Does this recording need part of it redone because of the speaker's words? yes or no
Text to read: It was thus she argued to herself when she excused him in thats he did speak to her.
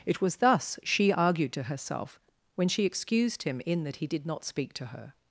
yes